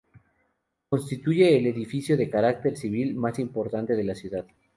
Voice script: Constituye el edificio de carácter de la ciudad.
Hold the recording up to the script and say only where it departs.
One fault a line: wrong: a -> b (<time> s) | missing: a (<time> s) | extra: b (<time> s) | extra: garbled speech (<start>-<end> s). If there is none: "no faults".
extra: civil más importante (2.8 s)